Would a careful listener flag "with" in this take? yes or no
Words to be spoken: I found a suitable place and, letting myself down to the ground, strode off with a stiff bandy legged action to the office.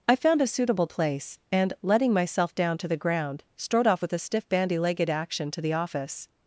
no